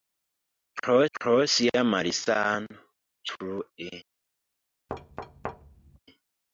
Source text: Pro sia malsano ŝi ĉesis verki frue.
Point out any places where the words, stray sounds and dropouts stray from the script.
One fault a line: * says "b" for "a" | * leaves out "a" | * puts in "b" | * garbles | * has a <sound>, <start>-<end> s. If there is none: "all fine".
* puts in "pro"
* leaves out "ŝi ĉesis verki"
* has a thud, 4.9-6.0 s